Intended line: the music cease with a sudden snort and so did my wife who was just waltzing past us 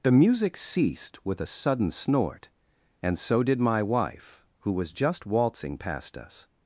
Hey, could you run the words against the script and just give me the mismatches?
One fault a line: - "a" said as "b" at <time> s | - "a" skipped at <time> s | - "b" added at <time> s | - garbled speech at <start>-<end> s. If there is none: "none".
- "cease" said as "ceased" at 0.6 s